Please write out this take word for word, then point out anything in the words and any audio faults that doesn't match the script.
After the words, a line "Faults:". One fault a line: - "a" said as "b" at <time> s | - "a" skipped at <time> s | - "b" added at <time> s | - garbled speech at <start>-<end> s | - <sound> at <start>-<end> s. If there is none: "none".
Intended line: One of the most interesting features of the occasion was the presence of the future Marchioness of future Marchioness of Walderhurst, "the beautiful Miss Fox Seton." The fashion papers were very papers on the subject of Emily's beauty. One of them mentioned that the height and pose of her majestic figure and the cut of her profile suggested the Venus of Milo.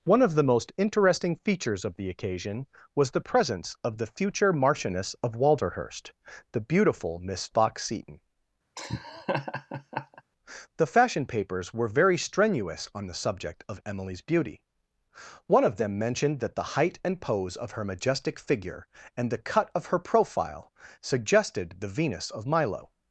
One of the most interesting features of the occasion was the presence of the future Marchioness of Walderhurst, "the beautiful Miss Fox Seton." The fashion papers were very strenuous on the subject of Emily's beauty. One of them mentioned that the height and pose of her majestic figure and the cut of her profile suggested the Venus of Milo.
Faults:
- "future Marchioness of" skipped at 5.3 s
- laugh at 8.8-10.2 s
- "papers" said as "strenuous" at 12.2 s